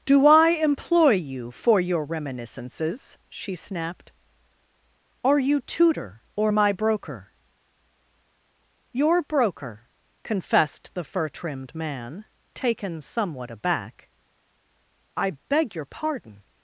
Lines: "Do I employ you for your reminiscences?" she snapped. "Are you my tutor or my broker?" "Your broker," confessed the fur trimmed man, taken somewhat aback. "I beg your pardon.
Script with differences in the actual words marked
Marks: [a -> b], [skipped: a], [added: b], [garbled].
"Do I employ you for your reminiscences?" she snapped. "Are you [skipped: my] tutor or my broker?" "Your broker," confessed the fur trimmed man, taken somewhat aback. "I beg your pardon.